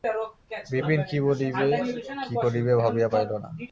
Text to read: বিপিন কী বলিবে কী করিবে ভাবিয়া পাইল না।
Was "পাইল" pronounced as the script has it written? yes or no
yes